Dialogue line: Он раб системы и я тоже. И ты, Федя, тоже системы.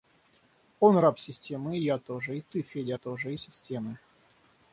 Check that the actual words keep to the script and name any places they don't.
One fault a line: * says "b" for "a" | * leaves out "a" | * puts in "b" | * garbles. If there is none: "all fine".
all fine